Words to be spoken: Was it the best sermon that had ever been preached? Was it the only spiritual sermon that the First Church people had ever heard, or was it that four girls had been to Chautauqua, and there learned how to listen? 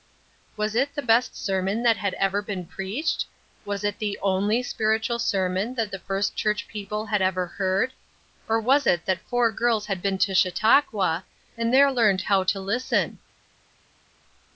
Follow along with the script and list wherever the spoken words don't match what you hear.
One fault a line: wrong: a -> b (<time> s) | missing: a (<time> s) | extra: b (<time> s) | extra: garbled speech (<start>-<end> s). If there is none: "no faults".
no faults